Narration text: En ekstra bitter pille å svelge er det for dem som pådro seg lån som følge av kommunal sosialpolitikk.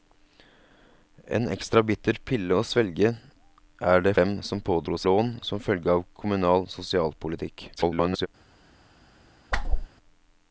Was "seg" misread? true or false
true